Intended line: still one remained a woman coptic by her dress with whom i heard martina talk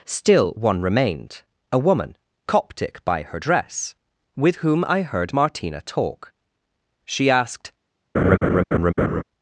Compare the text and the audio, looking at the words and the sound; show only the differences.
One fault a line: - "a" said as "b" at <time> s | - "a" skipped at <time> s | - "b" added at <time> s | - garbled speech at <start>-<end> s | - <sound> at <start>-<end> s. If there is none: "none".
- "she asked" added at 7.0 s
- laugh at 8.1-9.2 s